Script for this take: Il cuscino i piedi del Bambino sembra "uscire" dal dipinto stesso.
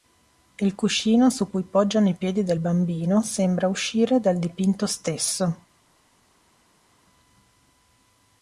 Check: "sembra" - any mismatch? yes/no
no